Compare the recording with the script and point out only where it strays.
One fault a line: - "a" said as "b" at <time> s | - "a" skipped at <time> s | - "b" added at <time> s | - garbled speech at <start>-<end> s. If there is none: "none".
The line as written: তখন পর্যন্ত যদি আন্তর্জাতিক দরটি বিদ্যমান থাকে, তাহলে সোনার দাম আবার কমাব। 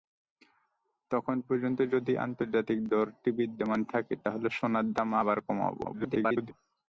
- garbled speech at 5.8-6.5 s